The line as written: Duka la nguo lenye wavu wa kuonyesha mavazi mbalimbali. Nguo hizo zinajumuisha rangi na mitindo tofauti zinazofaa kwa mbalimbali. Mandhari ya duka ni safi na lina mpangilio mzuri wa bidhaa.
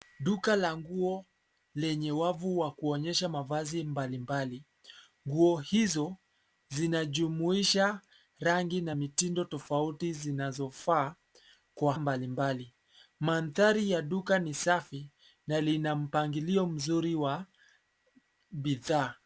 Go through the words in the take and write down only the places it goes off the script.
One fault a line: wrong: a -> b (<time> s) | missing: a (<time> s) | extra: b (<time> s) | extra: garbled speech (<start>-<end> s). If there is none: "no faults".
no faults